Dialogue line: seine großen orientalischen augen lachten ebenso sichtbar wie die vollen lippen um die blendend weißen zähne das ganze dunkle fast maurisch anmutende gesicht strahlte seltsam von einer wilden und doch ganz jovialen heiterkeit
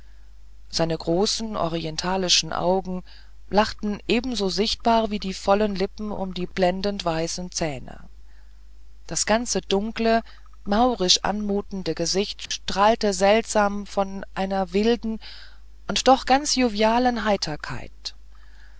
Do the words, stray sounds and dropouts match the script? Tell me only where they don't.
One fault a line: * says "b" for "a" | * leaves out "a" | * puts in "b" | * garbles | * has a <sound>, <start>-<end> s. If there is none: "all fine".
* leaves out "fast"
* has a dropout, 12.5-12.5 s